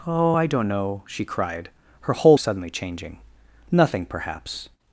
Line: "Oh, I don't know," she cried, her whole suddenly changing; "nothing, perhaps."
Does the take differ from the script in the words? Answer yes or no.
no